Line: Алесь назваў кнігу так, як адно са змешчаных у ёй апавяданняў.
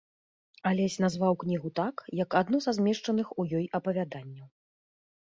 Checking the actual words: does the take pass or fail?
pass